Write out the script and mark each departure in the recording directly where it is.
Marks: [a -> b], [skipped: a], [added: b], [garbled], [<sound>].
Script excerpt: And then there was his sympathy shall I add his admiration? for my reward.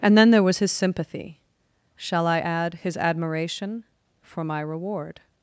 And then there was his sympathy shall I add his admiration? for my reward.